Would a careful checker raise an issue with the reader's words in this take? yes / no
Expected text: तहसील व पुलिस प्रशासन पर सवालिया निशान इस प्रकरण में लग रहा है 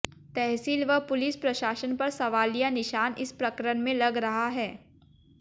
no